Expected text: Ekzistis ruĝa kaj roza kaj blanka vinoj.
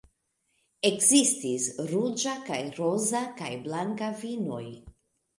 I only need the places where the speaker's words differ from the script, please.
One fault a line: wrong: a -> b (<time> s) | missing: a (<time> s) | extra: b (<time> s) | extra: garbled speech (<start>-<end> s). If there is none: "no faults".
no faults